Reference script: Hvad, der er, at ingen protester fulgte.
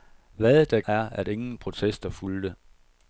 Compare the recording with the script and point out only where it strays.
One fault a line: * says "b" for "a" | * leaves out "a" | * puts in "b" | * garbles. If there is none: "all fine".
all fine